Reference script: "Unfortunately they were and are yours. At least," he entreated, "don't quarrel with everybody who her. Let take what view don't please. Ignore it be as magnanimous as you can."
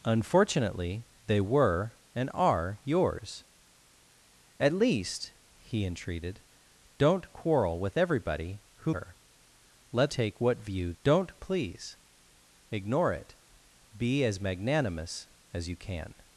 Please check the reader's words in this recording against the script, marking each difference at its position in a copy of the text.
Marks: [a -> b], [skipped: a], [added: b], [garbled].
"Unfortunately they were and are yours. At least," he entreated, "don't quarrel with everybody who her. Let take what view don't please. Ignore it be as magnanimous as you can."